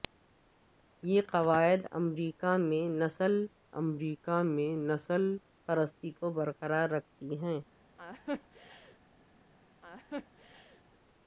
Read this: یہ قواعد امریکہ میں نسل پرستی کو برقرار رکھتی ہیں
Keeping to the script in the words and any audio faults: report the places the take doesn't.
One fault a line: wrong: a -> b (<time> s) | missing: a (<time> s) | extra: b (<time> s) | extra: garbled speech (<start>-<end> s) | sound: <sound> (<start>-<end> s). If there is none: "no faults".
extra: امریکہ میں نسل (3.7 s)
sound: laugh (8.0-9.0 s)
sound: laugh (9.8-10.8 s)